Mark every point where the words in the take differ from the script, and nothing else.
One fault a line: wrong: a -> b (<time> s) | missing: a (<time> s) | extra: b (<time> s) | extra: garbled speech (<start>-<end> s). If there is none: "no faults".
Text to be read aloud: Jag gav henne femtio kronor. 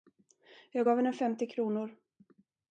no faults